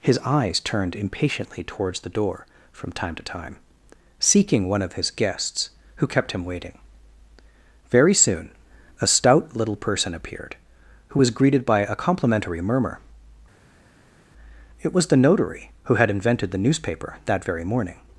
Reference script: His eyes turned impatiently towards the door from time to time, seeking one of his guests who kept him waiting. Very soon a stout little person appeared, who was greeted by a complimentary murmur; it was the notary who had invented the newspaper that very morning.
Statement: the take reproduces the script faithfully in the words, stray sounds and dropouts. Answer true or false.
true